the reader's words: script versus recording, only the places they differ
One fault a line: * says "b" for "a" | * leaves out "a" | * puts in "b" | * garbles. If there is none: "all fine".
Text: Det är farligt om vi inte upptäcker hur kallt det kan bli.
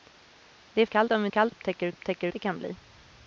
* says "kallt" for "farligt"
* says "kallt" for "inte"
* says "upptäcker" for "kallt"